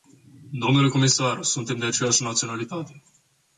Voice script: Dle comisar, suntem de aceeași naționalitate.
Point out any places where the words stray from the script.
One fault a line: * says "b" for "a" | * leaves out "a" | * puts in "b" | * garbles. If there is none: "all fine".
all fine